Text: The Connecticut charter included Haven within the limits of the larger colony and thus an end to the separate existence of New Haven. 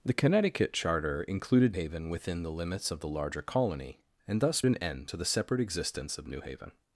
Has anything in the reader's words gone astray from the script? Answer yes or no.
no